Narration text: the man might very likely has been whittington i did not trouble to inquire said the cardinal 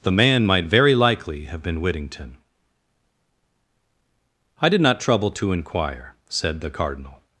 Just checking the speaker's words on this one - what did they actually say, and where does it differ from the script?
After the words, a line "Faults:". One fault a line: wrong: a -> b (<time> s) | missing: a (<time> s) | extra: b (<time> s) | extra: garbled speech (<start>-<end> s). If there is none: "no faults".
the man might very likely have been whittington i did not trouble to inquire said the cardinal
Faults:
wrong: has -> have (1.4 s)